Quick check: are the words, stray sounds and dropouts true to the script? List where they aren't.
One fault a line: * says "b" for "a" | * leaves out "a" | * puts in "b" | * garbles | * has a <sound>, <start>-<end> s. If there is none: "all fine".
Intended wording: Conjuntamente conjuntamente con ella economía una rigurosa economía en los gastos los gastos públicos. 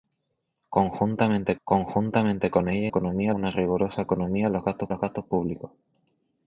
all fine